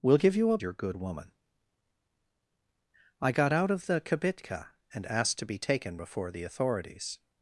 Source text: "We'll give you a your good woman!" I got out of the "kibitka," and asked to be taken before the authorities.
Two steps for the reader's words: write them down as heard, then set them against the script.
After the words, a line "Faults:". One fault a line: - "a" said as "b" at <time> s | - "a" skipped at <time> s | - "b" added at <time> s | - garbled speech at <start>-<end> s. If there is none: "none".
"We'll give you a your good woman!" I got out of the "kibitka," and asked to be taken before the authorities.
Faults:
none